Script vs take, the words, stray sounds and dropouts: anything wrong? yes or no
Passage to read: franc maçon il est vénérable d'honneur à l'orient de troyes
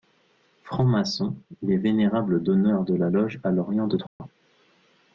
yes